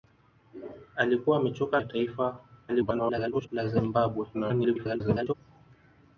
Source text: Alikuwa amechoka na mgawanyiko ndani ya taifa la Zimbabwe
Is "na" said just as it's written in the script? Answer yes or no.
no